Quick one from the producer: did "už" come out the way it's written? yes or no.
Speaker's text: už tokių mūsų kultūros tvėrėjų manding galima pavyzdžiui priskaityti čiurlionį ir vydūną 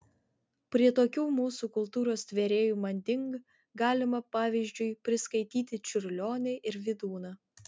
no